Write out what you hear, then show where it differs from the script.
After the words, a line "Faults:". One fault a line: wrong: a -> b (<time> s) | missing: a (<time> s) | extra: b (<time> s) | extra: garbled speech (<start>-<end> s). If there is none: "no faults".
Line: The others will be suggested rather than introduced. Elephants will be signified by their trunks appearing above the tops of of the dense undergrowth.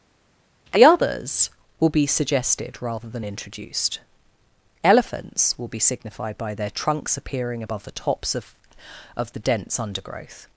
The others will be suggested rather than introduced. Elephants will be signified by their trunks appearing above the tops of of the dense undergrowth.
Faults:
no faults